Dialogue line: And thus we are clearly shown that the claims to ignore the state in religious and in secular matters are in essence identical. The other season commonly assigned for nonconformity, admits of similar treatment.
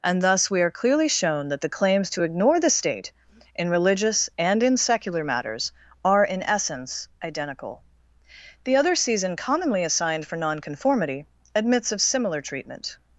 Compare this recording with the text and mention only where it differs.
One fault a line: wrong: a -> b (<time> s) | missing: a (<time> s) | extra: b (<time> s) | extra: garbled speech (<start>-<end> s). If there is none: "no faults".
no faults